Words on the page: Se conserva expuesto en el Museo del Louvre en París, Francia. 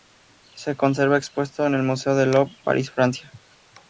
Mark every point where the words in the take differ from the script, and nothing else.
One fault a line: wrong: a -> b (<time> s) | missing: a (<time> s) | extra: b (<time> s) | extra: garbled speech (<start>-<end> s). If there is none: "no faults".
missing: en (2.6 s)